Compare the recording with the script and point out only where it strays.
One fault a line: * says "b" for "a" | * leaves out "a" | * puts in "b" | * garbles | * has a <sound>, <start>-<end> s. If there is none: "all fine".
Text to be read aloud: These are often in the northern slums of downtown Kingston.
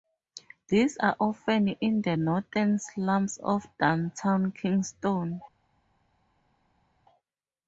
all fine